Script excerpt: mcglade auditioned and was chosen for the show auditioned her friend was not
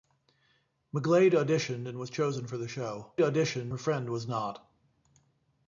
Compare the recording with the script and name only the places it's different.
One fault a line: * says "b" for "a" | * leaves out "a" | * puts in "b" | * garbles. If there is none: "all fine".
all fine